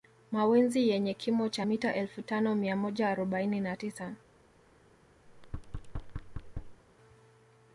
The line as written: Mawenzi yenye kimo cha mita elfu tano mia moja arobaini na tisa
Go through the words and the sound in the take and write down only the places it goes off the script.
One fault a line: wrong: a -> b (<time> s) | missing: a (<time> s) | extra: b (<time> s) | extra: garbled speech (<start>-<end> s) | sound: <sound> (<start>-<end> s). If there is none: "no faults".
sound: thud (5.3-6.8 s)